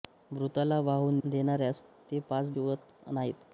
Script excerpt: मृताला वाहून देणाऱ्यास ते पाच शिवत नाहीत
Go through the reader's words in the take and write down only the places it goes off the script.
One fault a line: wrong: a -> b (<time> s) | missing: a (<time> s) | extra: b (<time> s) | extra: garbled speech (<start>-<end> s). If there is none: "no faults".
no faults